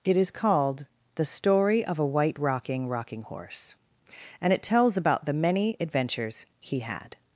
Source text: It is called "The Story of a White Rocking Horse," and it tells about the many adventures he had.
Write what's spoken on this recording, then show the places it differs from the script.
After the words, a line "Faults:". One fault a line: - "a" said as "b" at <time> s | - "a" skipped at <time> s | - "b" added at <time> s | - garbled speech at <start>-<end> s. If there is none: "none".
It is called "The Story of a White Rocking Rocking Horse," and it tells about the many adventures he had.
Faults:
- "Rocking" added at 2.9 s